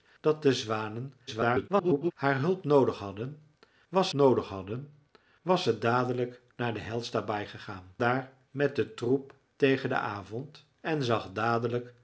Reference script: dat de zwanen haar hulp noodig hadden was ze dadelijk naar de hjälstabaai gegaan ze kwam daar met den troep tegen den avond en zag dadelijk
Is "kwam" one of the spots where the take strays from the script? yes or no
yes